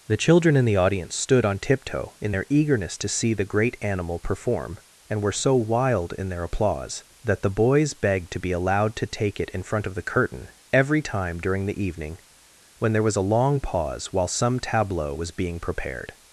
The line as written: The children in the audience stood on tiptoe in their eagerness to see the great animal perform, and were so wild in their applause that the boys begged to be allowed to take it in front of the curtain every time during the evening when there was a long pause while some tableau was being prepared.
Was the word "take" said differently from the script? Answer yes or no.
no